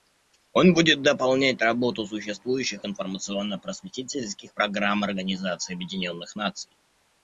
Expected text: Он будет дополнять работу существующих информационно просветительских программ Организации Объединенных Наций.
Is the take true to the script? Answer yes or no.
yes